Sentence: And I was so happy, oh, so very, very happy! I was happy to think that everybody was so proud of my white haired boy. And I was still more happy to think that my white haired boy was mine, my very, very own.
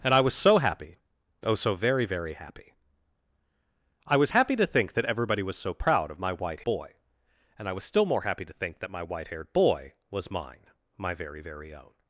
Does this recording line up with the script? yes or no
no